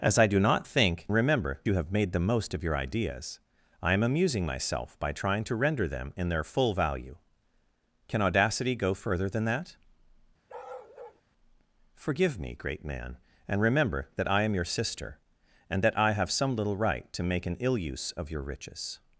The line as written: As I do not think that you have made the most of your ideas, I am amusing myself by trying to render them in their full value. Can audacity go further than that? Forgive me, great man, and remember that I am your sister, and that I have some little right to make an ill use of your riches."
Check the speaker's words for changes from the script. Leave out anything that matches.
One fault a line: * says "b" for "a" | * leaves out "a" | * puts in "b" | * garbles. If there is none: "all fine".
* says "remember" for "that"